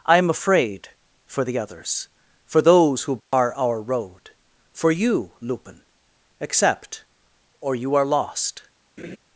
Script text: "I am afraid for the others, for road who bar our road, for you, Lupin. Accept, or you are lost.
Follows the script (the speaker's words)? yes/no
no